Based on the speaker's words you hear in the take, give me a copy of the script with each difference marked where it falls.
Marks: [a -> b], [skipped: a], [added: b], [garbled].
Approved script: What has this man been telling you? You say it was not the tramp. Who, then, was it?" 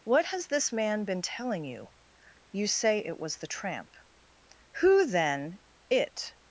What has this man been telling you? You say it was [skipped: not] the tramp. Who, then, [skipped: was] it?"